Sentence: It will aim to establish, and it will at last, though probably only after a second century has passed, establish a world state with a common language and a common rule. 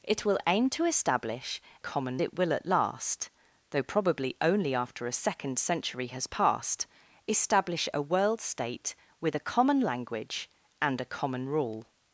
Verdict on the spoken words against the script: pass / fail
fail